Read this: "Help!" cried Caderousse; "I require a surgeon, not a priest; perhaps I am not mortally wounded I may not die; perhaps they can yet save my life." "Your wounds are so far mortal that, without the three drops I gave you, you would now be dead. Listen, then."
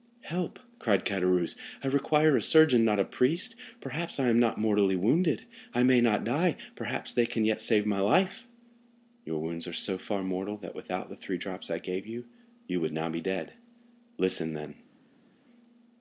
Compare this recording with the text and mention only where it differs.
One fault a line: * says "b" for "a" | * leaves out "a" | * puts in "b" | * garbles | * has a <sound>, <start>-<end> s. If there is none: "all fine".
all fine